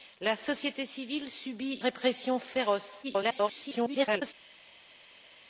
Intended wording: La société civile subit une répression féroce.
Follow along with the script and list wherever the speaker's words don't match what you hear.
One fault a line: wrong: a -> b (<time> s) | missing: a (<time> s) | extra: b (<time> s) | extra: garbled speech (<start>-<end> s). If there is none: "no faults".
missing: une (1.8 s)
extra: garbled speech (3.0-4.3 s)